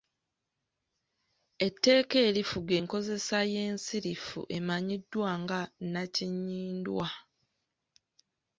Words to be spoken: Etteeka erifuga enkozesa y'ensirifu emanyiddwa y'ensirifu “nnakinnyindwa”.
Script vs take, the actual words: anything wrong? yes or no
yes